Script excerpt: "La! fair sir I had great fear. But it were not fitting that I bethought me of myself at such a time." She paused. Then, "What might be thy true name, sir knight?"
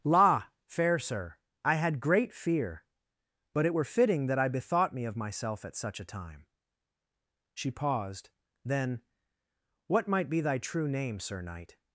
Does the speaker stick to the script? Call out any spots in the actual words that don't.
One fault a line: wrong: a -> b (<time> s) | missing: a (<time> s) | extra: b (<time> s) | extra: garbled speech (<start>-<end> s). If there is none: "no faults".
missing: not (3.8 s)